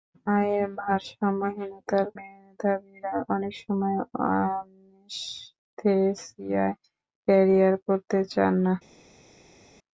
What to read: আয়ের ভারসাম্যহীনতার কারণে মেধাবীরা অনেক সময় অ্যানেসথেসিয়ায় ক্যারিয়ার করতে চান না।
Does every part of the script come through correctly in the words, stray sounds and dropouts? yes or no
no